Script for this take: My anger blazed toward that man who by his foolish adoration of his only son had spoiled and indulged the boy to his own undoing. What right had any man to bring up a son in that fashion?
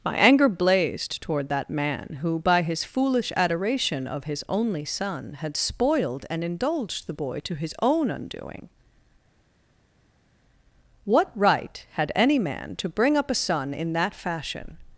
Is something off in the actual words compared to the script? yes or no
no